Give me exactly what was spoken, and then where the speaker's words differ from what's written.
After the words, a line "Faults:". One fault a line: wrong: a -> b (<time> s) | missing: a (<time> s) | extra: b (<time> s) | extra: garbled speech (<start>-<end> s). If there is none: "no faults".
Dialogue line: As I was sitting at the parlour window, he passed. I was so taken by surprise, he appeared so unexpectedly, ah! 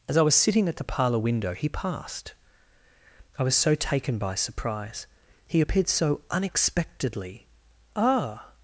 As I was sitting at the parlour window, he passed. I was so taken by surprise, he appeared so unexpectedly, ah!
Faults:
no faults